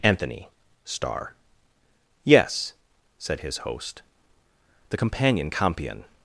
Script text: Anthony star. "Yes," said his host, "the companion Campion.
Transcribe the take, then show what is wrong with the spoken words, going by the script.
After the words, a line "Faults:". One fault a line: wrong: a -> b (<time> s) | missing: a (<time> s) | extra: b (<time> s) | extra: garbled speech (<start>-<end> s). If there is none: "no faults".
Anthony star. "Yes," said his host, "the companion Campion.
Faults:
no faults